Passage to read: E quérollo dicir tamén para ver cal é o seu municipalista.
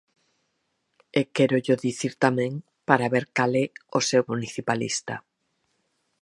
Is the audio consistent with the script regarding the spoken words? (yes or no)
yes